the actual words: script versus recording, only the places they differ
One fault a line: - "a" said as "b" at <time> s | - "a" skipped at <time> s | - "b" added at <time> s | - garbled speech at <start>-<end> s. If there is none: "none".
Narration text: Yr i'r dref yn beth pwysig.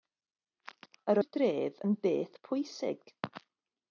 none